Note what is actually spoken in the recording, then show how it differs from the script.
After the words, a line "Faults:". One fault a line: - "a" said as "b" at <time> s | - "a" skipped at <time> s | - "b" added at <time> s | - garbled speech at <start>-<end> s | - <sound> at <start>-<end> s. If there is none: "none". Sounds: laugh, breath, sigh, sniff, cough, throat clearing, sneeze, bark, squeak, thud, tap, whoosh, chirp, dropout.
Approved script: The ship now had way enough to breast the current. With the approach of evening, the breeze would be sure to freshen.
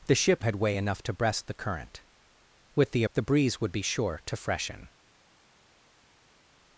The ship had way enough to breast the current. With the the breeze would be sure to freshen.
Faults:
- "now" skipped at 0.5 s
- "approach of evening" skipped at 3.0 s